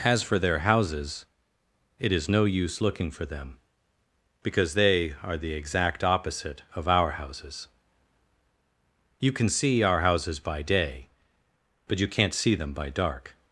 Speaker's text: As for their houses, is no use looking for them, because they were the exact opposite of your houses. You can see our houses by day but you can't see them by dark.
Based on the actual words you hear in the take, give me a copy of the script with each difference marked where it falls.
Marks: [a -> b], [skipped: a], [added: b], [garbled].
As for their houses, [added: it] is no use looking for them, because they [were -> are] the exact opposite of [your -> our] houses. You can see our houses by day but you can't see them by dark.